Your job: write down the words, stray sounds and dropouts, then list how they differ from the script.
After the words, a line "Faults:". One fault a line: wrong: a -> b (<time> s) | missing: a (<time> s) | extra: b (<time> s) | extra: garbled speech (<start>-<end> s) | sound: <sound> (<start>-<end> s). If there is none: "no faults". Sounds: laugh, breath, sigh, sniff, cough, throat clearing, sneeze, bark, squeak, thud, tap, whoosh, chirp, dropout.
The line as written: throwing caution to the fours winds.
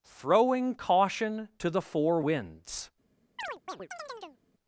throwing caution to the four winds.
Faults:
wrong: fours -> four (1.8 s)
sound: chirp (3.4-4.4 s)